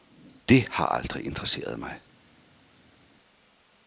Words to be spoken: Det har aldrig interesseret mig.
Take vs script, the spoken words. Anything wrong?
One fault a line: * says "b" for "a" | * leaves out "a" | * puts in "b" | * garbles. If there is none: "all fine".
all fine